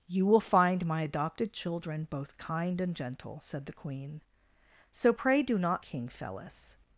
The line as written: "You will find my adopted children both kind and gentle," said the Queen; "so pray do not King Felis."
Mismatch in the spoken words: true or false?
false